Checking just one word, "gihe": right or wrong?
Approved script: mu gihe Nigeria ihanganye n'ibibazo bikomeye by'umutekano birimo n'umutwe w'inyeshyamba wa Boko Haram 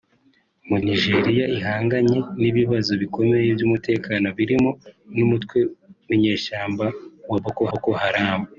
wrong